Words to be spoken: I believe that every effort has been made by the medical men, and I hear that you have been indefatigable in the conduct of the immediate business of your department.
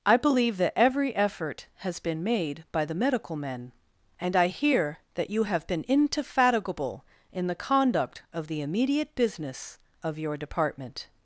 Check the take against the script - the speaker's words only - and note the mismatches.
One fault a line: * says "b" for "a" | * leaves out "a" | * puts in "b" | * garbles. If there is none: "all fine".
all fine